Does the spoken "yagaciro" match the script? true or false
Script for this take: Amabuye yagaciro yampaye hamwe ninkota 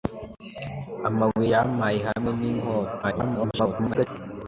false